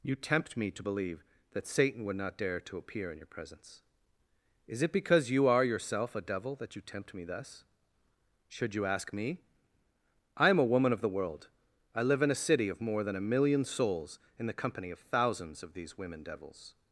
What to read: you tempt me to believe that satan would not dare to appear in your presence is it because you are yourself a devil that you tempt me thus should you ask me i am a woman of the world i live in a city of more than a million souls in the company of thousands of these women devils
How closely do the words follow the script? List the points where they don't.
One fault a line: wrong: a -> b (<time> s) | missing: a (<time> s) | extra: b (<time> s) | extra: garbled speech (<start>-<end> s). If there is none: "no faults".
no faults